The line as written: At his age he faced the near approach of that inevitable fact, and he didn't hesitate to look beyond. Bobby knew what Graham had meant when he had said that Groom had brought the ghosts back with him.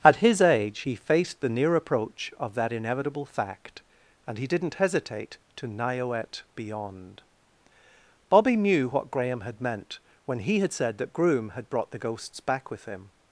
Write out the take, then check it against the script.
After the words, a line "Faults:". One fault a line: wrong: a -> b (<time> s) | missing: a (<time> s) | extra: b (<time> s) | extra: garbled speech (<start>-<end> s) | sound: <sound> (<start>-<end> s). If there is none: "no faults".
At his age he faced the near approach of that inevitable fact, and he didn't hesitate to nioet beyond. Bobby knew what Graham had meant when he had said that Groom had brought the ghosts back with him.
Faults:
wrong: look -> nioet (5.7 s)